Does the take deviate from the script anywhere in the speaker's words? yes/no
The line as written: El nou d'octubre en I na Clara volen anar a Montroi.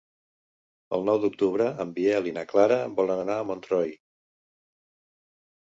yes